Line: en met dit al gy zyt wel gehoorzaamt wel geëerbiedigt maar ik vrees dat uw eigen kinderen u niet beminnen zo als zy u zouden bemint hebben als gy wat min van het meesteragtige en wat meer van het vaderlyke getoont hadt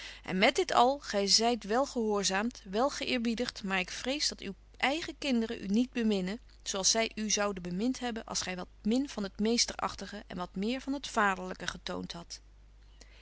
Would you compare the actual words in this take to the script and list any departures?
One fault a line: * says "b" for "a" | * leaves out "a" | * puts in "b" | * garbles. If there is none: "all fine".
all fine